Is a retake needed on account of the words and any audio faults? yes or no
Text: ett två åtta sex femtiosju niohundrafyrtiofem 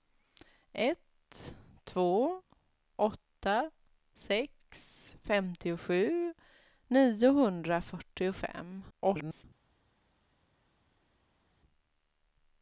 yes